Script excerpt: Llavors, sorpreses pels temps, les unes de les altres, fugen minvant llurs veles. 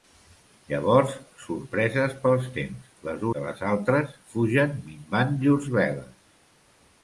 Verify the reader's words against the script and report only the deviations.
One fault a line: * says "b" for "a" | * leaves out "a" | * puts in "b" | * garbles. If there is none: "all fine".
* leaves out "unes"